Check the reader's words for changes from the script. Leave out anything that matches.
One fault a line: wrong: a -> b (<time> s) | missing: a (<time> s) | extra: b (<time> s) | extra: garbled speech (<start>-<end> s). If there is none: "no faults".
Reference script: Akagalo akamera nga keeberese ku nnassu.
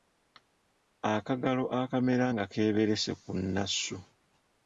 no faults